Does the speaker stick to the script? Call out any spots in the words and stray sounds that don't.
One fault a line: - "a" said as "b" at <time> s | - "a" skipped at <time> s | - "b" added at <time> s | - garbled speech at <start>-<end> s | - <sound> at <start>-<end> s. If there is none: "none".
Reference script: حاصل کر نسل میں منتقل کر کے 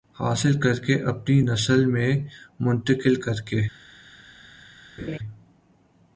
- "کے اپنی" added at 0.8 s
- laugh at 5.0-5.2 s